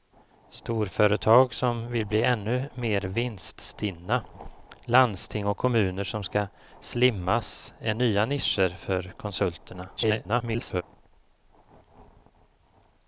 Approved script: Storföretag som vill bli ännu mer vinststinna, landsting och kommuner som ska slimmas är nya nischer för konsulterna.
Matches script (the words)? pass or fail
fail